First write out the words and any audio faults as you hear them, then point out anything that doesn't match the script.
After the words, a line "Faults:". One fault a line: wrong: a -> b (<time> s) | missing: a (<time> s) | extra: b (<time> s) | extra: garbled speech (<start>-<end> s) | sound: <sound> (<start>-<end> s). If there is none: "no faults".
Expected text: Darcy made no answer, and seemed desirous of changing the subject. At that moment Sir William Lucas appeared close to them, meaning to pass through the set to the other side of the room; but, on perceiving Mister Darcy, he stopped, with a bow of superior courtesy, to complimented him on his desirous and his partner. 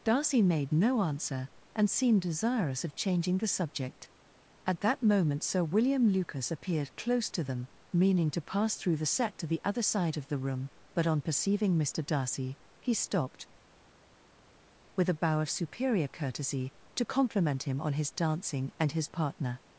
Darcy made no answer, and seemed desirous of changing the subject. At that moment Sir William Lucas appeared close to them, meaning to pass through the set to the other side of the room; but, on perceiving Mister Darcy, he stopped, with a bow of superior courtesy, to compliment him on his dancing and his partner.
Faults:
wrong: complimented -> compliment (17.1 s)
wrong: desirous -> dancing (18.1 s)